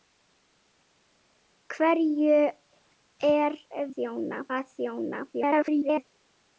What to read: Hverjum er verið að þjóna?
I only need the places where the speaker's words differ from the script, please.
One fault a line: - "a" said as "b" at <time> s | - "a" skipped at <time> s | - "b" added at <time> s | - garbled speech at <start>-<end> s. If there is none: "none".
- "verið" said as "þjóna" at 3.9 s
- garbled speech at 5.3-6.0 s